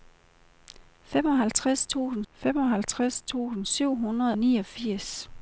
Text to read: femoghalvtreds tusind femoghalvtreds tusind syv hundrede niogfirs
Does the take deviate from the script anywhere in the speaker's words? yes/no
no